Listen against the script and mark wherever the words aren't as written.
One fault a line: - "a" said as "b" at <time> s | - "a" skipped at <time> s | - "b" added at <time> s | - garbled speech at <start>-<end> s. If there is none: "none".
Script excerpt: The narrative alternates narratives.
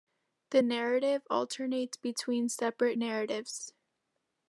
- "between separate" added at 2.0 s